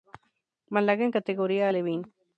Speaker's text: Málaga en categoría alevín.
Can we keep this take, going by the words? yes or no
yes